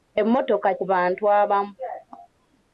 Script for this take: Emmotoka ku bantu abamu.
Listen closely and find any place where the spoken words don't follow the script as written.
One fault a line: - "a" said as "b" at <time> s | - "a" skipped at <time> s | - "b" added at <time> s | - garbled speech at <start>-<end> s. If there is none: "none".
none